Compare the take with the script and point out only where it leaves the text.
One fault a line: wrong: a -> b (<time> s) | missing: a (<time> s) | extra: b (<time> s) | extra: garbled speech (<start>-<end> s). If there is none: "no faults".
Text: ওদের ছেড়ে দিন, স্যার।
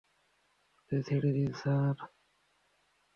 no faults